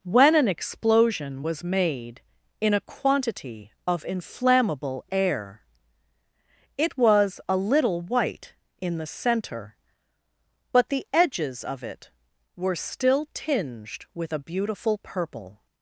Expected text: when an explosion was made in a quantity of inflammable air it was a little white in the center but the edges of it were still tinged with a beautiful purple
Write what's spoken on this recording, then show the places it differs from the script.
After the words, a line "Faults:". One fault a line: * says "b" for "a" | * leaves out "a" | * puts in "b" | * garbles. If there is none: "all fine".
when an explosion was made in a quantity of inflammable air it was a little white in the center but the edges of it were still tinged with a beautiful purple
Faults:
all fine